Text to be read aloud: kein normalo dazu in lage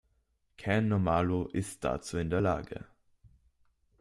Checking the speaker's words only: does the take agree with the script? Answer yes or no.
no